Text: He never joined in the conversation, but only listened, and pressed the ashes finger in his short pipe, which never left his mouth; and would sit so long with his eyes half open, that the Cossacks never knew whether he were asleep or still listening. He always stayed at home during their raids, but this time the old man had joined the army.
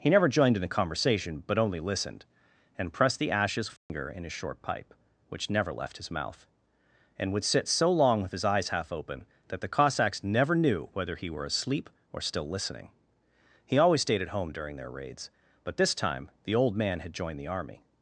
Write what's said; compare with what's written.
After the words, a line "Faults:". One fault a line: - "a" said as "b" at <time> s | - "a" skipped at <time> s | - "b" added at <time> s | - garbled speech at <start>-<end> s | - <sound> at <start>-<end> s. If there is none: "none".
He never joined in the conversation, but only listened, and pressed the ashes finger in his short pipe, which never left his mouth; and would sit so long with his eyes half open, that the Cossacks never knew whether he were asleep or still listening. He always stayed at home during their raids, but this time the old man had joined the army.
Faults:
- dropout at 3.8-3.9 s